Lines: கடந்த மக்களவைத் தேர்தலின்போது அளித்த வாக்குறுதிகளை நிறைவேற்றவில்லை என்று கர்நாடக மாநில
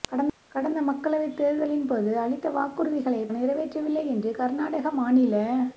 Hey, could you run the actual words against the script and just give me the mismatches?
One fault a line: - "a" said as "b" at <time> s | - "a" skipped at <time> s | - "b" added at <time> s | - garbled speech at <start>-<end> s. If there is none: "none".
none